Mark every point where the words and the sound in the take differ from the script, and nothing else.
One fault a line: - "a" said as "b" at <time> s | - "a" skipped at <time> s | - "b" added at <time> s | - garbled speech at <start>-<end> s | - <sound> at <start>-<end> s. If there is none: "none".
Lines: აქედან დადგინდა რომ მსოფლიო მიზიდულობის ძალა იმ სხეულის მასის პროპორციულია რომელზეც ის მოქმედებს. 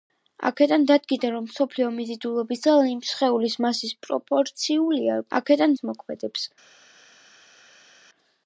- "რომელზეც" said as "აქედან" at 5.4 s